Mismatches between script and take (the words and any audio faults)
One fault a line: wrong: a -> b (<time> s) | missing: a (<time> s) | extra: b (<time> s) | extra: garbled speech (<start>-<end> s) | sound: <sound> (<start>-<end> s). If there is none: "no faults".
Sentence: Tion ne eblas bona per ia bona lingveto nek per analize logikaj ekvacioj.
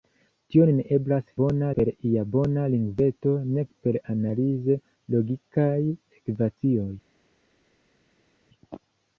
no faults